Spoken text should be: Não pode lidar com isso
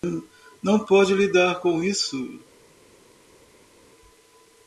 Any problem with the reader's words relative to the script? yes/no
no